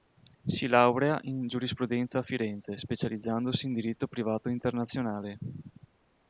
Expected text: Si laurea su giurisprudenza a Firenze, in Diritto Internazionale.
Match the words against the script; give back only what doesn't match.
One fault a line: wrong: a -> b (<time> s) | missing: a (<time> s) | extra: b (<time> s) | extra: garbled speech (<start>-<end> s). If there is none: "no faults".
wrong: su -> in (1.2 s)
extra: specializzandosi (2.8 s)
extra: Privato (4.1 s)